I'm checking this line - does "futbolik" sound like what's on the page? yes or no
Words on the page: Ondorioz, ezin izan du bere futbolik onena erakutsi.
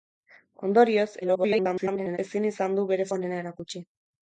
no